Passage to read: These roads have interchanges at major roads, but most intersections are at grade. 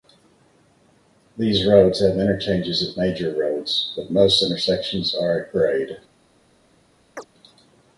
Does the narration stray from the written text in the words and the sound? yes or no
yes